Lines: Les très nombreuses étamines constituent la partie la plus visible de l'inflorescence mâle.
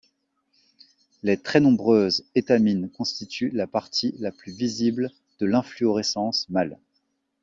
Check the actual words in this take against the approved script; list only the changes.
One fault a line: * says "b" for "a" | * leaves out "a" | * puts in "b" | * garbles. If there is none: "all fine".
all fine